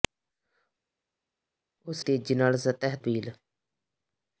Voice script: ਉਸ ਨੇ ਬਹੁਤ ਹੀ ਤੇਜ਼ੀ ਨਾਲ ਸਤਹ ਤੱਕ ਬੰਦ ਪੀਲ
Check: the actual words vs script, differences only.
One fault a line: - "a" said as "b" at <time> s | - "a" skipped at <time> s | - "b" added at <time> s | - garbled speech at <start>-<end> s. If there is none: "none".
- "ਨੇ ਬਹੁਤ ਹੀ" skipped at 2.0 s
- "ਤੱਕ ਬੰਦ" skipped at 3.0 s